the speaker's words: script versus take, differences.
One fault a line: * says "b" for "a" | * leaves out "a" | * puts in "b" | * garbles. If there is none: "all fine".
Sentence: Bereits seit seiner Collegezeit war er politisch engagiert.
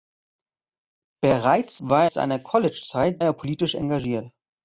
* says "war" for "seit"
* leaves out "war"